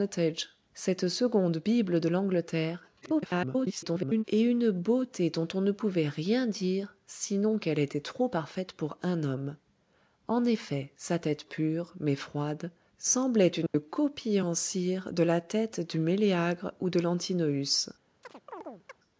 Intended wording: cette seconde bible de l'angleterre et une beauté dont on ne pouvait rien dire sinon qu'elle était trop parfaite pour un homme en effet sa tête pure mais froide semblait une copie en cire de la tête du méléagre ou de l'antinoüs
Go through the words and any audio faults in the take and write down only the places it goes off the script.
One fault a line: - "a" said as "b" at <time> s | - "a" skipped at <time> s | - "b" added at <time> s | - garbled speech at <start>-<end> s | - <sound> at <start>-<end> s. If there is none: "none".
- garbled speech at 3.0-4.2 s
- dropout at 13.7-13.7 s
- chirp at 18.2-19.0 s